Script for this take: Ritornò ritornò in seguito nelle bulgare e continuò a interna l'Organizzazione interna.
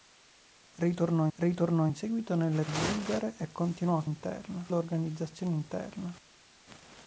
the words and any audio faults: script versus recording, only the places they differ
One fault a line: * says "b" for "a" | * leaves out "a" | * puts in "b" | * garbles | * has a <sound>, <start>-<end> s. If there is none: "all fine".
all fine